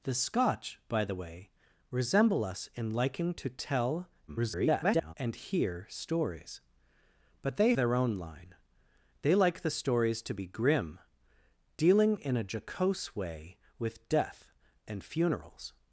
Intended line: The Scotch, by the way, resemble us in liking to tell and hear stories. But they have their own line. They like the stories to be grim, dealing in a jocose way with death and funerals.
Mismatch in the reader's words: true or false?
true